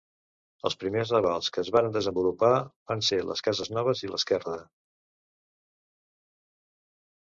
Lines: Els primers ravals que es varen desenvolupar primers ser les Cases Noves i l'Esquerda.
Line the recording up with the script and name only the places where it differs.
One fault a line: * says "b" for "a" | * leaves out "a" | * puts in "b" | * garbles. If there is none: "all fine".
* says "van" for "primers"